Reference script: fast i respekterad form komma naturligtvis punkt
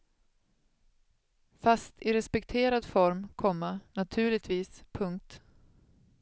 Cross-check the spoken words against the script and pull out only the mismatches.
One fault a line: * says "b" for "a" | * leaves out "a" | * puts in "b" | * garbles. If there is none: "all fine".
all fine